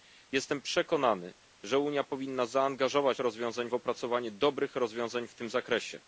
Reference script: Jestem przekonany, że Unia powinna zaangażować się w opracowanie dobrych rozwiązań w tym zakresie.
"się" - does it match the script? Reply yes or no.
no